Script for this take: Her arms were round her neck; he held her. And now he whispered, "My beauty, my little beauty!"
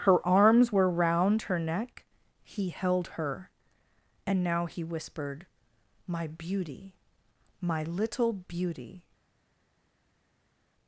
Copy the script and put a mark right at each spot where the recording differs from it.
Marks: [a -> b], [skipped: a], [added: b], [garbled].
Her arms were round her neck; he held her. And now he whispered, "My beauty, my little beauty!"